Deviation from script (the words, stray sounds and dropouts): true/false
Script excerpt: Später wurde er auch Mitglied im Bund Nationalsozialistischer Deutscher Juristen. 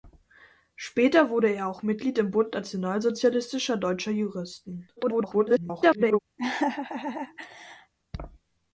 true